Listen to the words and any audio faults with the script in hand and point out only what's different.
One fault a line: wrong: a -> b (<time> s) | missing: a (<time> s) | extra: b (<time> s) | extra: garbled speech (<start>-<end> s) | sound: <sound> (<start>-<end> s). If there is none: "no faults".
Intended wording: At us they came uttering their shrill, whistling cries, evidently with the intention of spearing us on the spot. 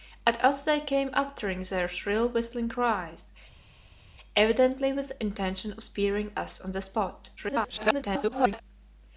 extra: garbled speech (7.4-8.6 s)